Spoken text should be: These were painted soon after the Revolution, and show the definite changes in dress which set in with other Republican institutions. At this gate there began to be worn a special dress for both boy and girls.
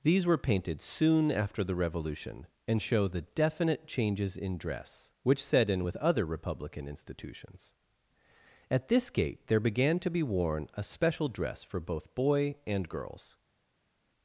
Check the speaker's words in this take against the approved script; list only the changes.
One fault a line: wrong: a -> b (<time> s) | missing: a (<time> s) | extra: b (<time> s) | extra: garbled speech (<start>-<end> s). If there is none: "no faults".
no faults